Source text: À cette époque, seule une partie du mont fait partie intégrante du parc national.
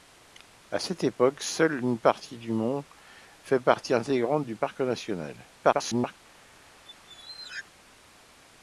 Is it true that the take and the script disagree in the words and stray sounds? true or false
true